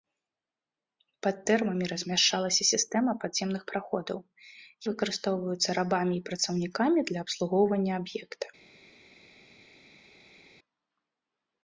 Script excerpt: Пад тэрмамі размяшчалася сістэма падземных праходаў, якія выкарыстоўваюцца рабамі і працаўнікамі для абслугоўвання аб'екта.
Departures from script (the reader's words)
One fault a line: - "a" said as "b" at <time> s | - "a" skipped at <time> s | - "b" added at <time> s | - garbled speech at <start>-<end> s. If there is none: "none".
- "якія" skipped at 4.2 s